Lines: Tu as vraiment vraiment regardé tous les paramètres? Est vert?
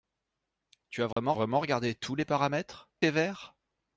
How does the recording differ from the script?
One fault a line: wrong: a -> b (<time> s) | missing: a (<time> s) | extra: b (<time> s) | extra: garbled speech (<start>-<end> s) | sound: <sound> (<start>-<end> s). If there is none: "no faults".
sound: dropout (1.1-1.2 s)